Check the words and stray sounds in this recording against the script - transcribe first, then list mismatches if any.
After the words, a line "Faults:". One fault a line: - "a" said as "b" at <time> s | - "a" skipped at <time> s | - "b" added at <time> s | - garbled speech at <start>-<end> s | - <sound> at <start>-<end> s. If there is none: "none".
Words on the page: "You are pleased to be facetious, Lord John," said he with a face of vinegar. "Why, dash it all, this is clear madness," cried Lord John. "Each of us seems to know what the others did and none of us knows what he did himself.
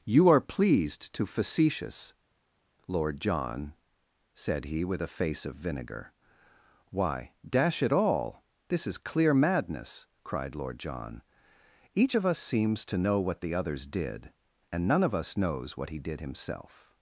"You are pleased to facetious, Lord John," said he with a face of vinegar. "Why, dash it all, this is clear madness," cried Lord John. "Each of us seems to know what the others did and none of us knows what he did himself.
Faults:
- "be" skipped at 1.3 s